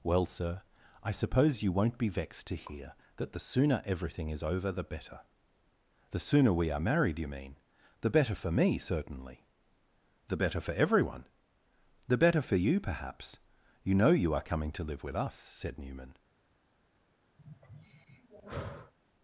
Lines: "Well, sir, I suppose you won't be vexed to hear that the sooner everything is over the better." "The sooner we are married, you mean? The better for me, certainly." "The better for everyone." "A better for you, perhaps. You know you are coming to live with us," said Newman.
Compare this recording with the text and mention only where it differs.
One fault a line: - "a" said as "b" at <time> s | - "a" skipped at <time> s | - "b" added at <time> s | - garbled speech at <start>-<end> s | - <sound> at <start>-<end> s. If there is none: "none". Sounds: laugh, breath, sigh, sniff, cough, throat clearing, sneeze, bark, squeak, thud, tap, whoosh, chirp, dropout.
- "A" said as "The" at 12.1 s
- sigh at 17.4-18.9 s